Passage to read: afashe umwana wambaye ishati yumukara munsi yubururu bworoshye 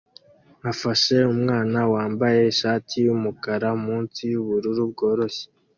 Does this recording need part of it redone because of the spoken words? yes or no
no